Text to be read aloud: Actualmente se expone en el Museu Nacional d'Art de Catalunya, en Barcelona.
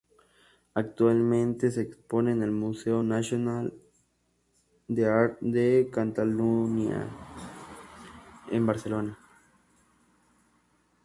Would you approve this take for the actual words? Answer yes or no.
yes